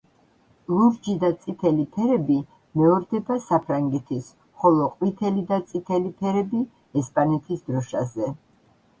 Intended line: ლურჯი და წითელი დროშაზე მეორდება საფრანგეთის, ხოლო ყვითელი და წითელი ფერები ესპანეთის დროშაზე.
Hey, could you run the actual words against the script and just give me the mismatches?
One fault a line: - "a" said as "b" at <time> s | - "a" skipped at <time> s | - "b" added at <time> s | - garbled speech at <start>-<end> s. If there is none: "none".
- "დროშაზე" said as "ფერები" at 2.0 s